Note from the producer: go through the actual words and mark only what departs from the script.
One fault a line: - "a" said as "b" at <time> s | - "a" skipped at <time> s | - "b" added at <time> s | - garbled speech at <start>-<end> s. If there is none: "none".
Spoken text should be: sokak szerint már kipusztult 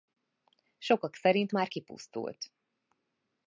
none